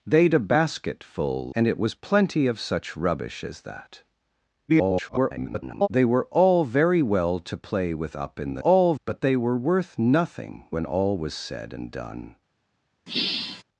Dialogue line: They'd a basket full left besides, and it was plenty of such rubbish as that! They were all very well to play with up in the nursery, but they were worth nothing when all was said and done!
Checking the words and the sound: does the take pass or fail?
fail